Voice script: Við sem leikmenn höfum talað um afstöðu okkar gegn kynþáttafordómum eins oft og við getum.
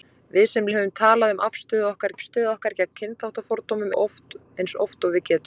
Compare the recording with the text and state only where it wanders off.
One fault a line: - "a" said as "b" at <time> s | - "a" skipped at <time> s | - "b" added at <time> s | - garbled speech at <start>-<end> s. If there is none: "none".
- "leikmenn" skipped at 0.7 s
- "afstöðu okkar" added at 2.1 s
- "eins" skipped at 3.9 s